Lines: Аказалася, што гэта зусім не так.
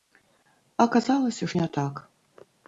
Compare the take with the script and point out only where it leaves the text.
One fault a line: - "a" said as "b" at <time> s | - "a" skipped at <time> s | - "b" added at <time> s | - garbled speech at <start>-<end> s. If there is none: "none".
- "што гэта зусім" skipped at 1.5 s